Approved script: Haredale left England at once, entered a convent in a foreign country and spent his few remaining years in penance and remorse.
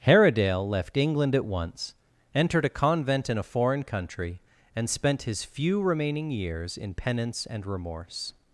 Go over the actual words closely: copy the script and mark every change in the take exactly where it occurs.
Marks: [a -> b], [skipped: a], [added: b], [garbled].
Haredale left England at once, entered a convent in a foreign country and spent his few remaining years in penance and remorse.